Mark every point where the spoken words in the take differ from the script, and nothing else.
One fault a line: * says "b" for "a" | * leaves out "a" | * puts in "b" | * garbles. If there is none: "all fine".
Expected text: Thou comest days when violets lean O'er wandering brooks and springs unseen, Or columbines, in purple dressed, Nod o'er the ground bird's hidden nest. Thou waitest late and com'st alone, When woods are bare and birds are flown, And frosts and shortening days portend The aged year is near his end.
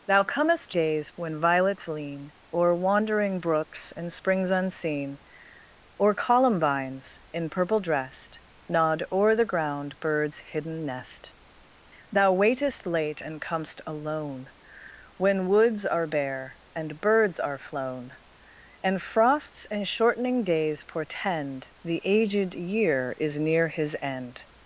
all fine